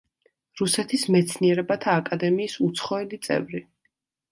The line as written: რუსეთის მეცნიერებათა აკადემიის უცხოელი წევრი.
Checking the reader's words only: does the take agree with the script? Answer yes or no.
yes